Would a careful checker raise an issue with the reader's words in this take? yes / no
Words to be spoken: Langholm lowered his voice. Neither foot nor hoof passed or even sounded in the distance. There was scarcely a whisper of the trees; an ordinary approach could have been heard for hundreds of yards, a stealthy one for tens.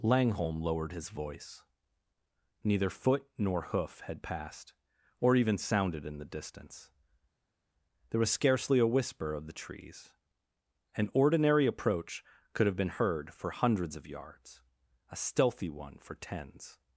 yes